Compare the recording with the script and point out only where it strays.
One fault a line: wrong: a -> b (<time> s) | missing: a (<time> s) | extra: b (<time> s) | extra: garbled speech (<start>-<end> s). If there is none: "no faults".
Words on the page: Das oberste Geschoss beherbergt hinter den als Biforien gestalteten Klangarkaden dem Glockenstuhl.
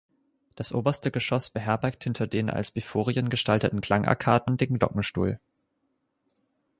wrong: dem -> den (4.6 s)